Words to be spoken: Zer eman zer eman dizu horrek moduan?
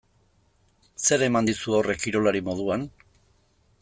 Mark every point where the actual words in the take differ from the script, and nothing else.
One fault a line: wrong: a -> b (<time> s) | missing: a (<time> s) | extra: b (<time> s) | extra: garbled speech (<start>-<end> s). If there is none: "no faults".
missing: zer eman (1.5 s)
extra: kirolari (2.1 s)